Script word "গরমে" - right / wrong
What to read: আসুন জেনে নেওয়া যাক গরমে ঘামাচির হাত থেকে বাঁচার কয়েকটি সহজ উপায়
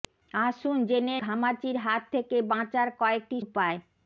wrong